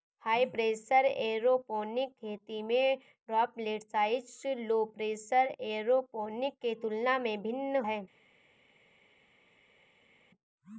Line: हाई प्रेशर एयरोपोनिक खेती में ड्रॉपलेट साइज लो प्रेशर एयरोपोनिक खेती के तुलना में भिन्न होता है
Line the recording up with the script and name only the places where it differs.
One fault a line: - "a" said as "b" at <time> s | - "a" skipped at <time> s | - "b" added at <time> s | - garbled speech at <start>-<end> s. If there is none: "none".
- "खेती" skipped at 6.6 s
- "होता" skipped at 7.8 s